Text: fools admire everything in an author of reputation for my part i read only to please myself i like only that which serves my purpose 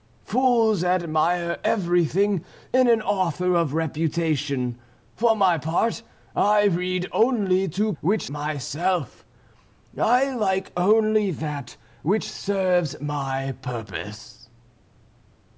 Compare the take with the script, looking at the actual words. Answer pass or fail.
fail